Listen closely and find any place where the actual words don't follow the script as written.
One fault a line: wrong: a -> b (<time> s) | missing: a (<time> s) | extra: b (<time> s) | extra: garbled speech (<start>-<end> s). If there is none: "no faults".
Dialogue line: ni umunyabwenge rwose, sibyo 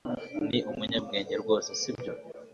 no faults